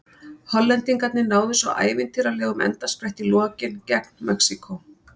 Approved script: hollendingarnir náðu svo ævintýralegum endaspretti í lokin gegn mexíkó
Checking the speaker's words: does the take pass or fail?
pass